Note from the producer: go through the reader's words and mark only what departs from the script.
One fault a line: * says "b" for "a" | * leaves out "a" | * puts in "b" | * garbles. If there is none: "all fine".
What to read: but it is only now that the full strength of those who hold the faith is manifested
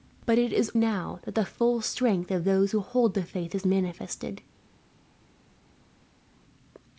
* leaves out "only"